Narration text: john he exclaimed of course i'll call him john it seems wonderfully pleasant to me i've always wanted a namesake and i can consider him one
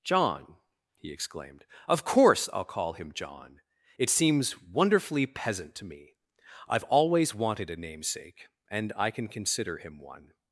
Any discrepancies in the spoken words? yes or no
yes